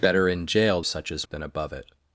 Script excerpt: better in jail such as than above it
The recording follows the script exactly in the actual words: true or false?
true